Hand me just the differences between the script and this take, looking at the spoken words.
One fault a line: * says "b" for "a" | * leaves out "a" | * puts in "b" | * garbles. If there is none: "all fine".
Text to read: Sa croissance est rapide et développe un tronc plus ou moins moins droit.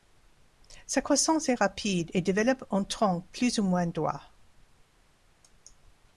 * leaves out "moins"